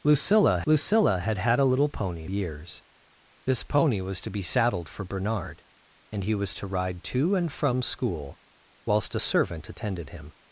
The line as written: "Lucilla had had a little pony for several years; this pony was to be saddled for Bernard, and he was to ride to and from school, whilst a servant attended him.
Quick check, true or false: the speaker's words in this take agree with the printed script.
false